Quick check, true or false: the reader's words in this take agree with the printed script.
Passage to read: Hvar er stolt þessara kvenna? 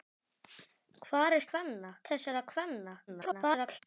false